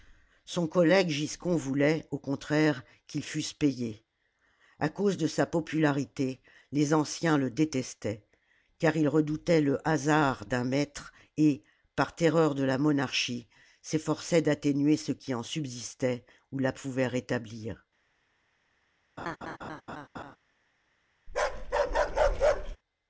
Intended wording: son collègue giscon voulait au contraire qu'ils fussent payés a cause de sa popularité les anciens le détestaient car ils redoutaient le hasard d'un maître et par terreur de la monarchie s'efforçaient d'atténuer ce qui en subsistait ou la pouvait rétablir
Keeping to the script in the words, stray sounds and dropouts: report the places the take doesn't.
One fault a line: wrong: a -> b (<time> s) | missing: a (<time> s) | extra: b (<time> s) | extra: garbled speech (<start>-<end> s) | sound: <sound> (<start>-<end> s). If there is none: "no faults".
sound: laugh (19.2-20.4 s)
sound: bark (21.3-22.8 s)